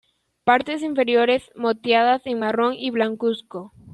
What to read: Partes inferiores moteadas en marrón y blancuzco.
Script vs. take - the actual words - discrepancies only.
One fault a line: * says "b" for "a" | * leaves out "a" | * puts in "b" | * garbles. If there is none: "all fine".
all fine